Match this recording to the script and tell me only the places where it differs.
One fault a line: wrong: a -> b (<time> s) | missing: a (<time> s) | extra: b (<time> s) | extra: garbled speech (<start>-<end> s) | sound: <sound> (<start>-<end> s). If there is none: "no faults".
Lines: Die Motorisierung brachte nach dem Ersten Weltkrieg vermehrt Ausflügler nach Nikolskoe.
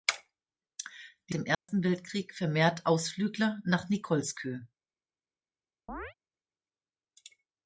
missing: Motorisierung brachte nach (1.4 s)
sound: dropout (1.5-1.7 s)
sound: chirp (5.9-6.1 s)